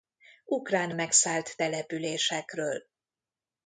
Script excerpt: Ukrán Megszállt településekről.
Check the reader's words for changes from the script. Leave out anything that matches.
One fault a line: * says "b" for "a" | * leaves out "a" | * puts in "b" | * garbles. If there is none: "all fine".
all fine